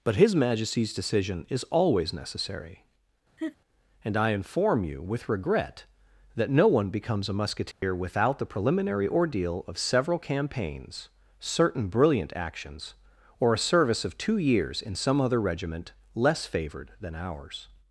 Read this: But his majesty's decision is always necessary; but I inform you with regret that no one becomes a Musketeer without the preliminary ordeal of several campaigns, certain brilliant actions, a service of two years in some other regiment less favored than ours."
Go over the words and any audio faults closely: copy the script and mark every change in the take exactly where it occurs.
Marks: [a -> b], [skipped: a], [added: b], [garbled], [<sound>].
But his majesty's decision is always necessary; [laugh] [but -> and] I inform you with regret that no one becomes a Musketeer [dropout] without the preliminary ordeal of several campaigns, certain brilliant actions, [added: or] a service of two years in some other regiment less favored than ours."